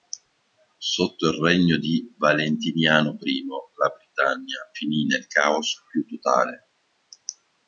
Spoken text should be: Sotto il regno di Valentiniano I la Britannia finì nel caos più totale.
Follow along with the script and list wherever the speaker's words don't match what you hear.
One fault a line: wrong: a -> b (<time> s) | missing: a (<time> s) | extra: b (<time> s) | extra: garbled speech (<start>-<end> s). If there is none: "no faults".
no faults